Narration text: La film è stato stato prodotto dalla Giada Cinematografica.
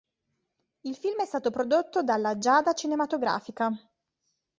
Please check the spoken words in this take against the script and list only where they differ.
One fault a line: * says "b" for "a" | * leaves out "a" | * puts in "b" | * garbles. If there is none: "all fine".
* says "Il" for "La"
* leaves out "stato"